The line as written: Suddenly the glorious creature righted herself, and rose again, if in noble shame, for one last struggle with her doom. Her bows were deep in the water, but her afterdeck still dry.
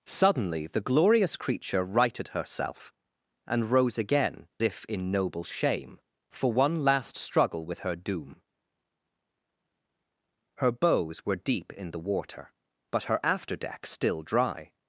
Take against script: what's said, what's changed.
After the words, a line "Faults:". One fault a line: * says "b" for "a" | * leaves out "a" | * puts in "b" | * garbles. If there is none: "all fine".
Suddenly the glorious creature righted herself, and rose again, if in noble shame, for one last struggle with her doom. Her bows were deep in the water, but her afterdeck still dry.
Faults:
all fine